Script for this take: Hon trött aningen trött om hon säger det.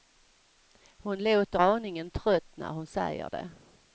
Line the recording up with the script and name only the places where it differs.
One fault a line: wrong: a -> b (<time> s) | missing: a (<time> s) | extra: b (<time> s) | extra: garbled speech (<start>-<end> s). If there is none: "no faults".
wrong: trött -> låter (1.2 s)
wrong: om -> när (2.6 s)